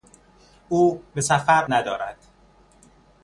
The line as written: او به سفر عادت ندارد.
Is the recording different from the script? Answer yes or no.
yes